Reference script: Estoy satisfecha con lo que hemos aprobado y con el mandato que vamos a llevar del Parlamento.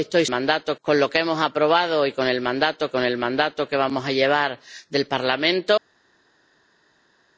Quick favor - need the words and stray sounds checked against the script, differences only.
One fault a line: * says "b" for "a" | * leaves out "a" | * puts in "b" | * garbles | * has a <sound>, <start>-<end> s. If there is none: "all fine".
* says "mandato" for "satisfecha"
* puts in "con el mandato"